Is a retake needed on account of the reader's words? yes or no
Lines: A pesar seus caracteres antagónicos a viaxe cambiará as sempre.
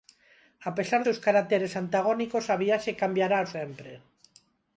no